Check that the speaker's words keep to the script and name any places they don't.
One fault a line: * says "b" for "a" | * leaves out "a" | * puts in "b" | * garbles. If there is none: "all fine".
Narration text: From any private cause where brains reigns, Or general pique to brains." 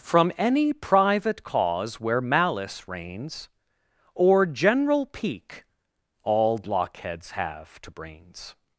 * says "malice" for "brains"
* puts in "all blockheads have"